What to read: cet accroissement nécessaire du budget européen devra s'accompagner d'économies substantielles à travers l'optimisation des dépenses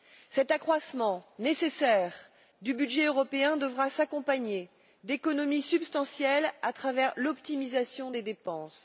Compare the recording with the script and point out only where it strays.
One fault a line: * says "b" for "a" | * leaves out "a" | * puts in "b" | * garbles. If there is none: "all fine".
all fine